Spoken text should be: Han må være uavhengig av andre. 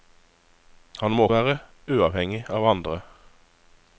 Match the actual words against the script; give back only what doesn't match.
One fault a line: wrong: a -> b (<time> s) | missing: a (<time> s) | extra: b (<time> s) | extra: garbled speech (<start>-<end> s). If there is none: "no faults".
no faults